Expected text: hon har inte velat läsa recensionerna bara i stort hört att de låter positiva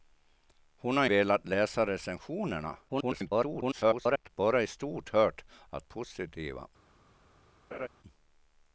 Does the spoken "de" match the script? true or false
false